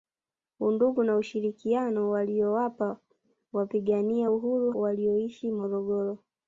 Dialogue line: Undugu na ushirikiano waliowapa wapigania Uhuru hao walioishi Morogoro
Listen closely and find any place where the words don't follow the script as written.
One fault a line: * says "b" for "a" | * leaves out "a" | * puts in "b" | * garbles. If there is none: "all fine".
* leaves out "hao"